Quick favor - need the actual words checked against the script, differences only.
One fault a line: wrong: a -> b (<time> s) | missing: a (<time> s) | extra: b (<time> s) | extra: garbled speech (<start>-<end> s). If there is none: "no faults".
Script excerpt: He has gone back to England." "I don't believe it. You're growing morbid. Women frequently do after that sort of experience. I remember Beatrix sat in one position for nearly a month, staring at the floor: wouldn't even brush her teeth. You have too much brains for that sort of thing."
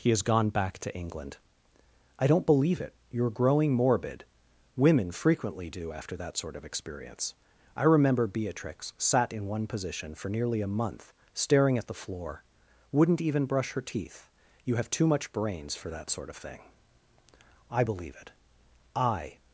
extra: I believe it I (17.7 s)